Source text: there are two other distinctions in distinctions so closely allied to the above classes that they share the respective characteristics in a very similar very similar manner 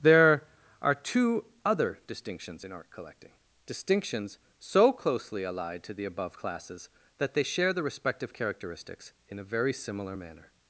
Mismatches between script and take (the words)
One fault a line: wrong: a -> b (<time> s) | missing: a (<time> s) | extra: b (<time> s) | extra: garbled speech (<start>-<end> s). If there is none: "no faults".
extra: art collecting (2.7 s)
missing: very similar (10.1 s)